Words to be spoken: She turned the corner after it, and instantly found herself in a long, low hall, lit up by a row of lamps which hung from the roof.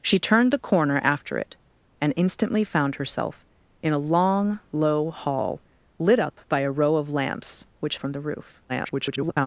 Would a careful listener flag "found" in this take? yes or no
no